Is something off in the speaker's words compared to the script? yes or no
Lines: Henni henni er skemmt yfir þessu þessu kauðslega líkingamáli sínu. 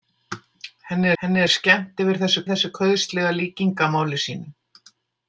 no